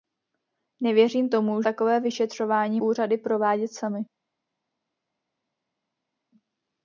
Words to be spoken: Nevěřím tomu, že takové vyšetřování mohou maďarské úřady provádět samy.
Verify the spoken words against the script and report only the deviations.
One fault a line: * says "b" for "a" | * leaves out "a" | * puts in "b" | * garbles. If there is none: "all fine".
* leaves out "že"
* leaves out "mohou maďarské"